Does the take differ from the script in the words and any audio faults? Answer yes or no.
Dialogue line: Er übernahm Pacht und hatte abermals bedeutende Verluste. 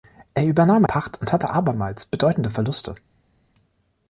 no